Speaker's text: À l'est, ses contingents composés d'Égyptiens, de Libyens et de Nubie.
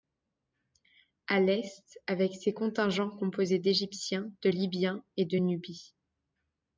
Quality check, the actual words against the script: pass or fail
fail